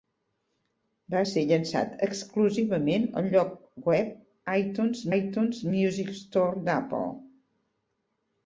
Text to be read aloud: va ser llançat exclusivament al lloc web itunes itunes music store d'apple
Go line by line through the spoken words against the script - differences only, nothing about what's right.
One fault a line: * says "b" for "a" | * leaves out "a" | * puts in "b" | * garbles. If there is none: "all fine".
all fine